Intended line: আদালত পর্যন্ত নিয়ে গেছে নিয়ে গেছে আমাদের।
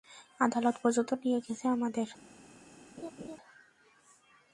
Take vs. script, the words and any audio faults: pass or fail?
fail